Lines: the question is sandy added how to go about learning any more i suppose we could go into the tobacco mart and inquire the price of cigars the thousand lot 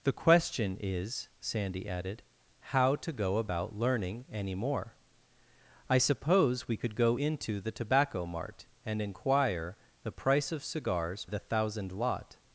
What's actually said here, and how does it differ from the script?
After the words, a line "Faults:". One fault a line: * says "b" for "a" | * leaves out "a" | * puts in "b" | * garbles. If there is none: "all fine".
the question is sandy added how to go about learning any more i suppose we could go into the tobacco mart and inquire the price of cigars the thousand lot
Faults:
all fine